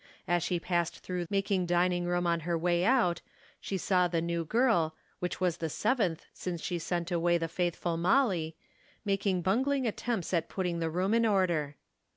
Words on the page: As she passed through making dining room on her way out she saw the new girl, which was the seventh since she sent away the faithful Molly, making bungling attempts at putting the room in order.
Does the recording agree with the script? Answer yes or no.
yes